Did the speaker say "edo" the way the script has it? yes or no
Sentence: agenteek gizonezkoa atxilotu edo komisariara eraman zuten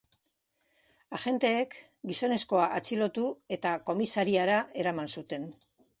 no